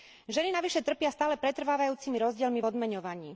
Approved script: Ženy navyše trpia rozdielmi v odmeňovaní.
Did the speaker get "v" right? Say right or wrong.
right